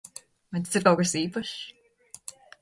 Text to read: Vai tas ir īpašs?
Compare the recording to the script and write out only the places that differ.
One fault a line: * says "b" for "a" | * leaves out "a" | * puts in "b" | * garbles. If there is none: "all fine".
* puts in "kaut kas"